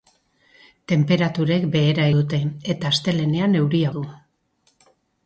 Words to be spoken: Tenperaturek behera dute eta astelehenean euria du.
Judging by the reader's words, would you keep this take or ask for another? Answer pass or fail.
pass